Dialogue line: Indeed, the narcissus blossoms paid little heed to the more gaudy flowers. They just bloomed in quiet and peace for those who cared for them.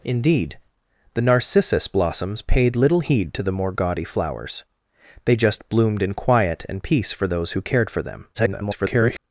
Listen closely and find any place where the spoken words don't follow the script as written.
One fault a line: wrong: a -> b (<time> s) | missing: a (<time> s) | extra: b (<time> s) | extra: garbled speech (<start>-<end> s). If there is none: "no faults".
extra: garbled speech (8.3-9.2 s)